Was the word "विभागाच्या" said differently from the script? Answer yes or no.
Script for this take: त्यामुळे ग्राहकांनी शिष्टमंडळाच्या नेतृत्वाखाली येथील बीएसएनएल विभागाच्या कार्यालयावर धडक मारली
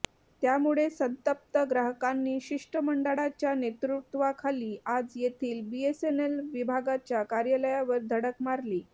no